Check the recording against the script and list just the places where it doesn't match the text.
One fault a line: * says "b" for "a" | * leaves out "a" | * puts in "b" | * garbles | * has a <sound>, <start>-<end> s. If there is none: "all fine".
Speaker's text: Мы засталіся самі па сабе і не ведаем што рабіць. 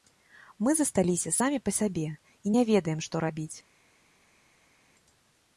all fine